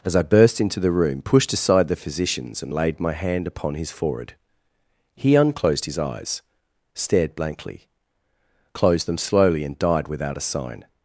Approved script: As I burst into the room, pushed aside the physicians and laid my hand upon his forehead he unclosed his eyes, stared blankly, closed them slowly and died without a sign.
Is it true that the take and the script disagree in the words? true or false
false